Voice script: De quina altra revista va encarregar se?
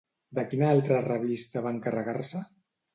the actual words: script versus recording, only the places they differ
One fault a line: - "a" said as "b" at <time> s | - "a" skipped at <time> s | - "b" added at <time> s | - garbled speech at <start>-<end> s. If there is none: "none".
none